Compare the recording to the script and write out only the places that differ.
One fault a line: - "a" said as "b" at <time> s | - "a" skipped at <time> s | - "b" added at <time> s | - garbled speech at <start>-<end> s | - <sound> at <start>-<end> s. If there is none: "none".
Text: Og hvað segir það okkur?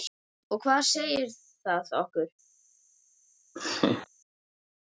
- laugh at 3.6-4.1 s